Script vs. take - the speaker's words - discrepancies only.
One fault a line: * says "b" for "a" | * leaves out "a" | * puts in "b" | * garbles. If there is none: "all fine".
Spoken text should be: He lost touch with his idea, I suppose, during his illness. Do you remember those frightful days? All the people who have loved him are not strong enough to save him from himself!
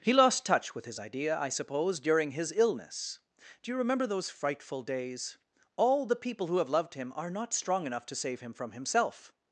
all fine